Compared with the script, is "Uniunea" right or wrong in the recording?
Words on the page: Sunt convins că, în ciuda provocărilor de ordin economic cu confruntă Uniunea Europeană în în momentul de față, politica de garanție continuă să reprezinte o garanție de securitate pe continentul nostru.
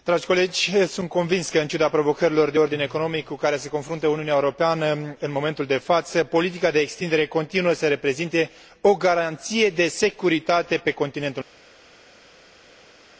right